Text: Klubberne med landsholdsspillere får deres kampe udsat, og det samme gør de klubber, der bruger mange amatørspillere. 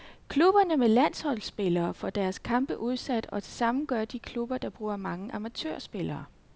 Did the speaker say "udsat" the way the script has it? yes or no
yes